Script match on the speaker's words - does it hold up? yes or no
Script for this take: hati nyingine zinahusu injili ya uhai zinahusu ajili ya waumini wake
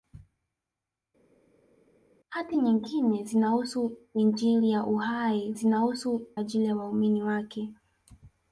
yes